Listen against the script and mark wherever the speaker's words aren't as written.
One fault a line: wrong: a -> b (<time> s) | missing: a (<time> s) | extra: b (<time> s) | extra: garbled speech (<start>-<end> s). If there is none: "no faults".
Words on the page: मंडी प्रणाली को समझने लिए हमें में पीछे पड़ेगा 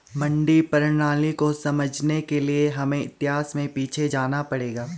extra: के (2.2 s)
extra: इतिहास (3.0 s)
extra: जाना (4.1 s)